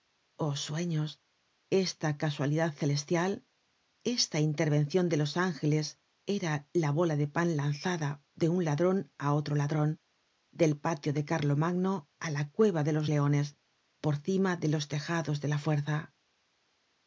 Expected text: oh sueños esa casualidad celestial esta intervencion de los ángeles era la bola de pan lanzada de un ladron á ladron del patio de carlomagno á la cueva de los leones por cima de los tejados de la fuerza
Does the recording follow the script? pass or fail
fail